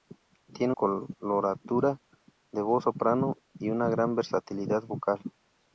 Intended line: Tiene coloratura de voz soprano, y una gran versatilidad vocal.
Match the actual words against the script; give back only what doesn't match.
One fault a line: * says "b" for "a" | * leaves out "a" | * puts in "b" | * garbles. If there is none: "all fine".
all fine